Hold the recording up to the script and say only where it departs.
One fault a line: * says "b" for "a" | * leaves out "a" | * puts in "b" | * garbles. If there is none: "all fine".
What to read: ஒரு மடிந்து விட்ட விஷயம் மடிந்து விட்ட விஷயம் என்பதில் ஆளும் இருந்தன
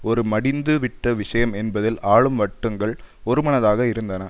* says "என்பதில் ஆளும் வட்டங்கள் ஒருமனதாக" for "மடிந்து விட்ட விஷயம் என்பதில் ஆளும்"